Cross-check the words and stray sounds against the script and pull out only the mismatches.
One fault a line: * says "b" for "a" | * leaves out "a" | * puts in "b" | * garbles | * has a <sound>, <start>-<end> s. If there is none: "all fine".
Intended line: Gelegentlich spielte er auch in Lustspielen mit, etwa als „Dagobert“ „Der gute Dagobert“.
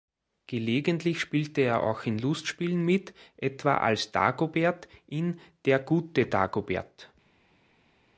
* puts in "in"